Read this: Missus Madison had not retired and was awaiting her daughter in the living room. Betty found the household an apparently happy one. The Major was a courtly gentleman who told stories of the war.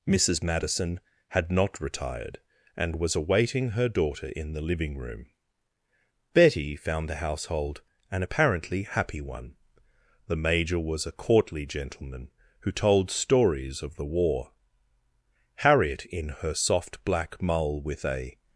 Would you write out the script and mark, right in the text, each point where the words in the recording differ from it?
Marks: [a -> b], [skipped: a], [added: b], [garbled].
Missus Madison had not retired and was awaiting her daughter in the living room. Betty found the household an apparently happy one. The Major was a courtly gentleman who told stories of the war. [added: Harriet in her soft black mull with a]